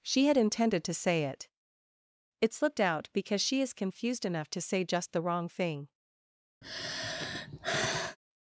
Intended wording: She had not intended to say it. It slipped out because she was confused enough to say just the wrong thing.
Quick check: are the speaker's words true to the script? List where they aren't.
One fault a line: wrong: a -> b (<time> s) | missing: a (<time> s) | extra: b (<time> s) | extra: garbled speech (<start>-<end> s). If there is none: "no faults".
missing: not (0.4 s)
wrong: was -> is (3.6 s)